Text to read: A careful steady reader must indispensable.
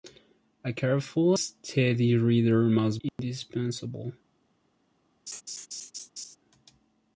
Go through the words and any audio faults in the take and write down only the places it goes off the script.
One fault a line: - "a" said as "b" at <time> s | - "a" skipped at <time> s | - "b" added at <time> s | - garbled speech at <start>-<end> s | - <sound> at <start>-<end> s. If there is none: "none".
- dropout at 3.1-3.2 s
- laugh at 5.3-6.4 s